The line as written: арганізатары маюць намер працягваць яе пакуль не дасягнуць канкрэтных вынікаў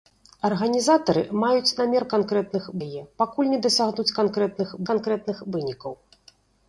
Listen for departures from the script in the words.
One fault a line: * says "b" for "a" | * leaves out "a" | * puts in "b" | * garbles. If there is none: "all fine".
* says "канкрэтных" for "працягваць"
* puts in "канкрэтных"